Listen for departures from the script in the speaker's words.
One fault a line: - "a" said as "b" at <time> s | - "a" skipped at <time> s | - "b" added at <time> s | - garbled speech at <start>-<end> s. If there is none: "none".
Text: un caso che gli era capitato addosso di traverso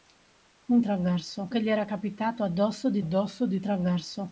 - "caso" said as "traverso" at 0.8 s
- "addosso di" added at 3.0 s